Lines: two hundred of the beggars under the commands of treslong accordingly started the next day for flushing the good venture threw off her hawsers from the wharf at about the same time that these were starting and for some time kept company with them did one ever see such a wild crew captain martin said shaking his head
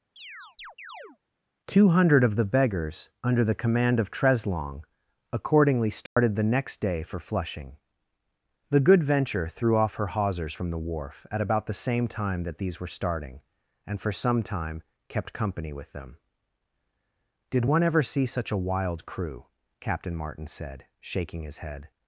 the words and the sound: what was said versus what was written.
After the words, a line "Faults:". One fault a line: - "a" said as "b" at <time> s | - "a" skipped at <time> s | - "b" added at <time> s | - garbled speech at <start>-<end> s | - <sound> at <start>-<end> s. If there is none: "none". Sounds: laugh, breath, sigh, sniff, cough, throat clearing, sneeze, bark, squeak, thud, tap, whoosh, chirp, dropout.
two hundred of the beggars under the command of treslong accordingly started the next day for flushing the good venture threw off her hawsers from the wharf at about the same time that these were starting and for some time kept company with them did one ever see such a wild crew captain martin said shaking his head
Faults:
- chirp at 0.2-1.2 s
- "commands" said as "command" at 3.5 s
- dropout at 6.1-6.2 s